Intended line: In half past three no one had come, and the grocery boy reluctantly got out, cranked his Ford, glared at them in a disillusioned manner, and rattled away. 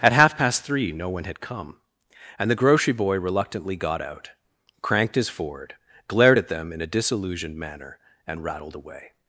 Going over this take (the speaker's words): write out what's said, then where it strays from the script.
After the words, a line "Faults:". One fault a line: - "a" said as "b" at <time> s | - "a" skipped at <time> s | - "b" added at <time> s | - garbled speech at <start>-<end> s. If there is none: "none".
At half past three no one had come, and the grocery boy reluctantly got out, cranked his Ford, glared at them in a disillusioned manner, and rattled away.
Faults:
- "In" said as "At" at 0.0 s